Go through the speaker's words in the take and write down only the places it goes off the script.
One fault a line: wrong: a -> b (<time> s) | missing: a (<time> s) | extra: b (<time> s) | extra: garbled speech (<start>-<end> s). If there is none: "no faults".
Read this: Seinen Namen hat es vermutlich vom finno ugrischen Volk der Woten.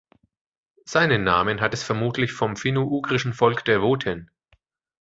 no faults